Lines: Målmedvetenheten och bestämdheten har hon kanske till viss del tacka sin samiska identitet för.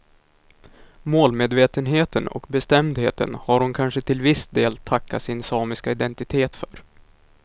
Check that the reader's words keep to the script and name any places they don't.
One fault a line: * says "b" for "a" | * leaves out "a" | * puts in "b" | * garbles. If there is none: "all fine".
all fine